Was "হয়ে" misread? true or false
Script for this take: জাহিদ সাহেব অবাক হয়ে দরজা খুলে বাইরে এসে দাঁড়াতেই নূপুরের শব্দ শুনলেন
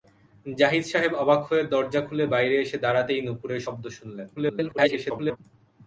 false